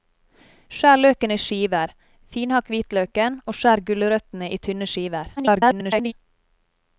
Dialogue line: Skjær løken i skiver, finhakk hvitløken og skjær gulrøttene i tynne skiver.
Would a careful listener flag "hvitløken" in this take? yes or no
no